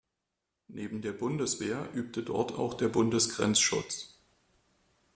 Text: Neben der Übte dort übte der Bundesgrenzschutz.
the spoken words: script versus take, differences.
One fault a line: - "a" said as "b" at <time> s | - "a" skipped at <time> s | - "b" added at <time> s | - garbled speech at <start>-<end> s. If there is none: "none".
- "Bundeswehr" added at 1.1 s
- "übte" said as "auch" at 2.5 s